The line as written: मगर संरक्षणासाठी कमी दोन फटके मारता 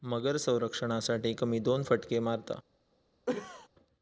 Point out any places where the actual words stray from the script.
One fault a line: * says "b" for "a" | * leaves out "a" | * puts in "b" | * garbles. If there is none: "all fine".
all fine